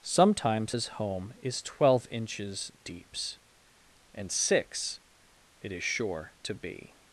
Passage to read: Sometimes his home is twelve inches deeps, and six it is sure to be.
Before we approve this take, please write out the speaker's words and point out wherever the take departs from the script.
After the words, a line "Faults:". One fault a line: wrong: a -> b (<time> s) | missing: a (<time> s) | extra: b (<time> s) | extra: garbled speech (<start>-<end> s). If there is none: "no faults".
Sometimes his home is twelve inches deeps, and six it is sure to be.
Faults:
no faults